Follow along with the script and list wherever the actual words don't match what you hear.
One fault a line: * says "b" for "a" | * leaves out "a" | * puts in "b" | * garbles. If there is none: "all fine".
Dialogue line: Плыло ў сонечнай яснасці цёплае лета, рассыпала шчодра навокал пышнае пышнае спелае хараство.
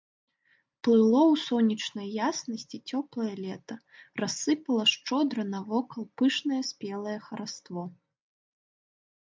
* leaves out "пышнае"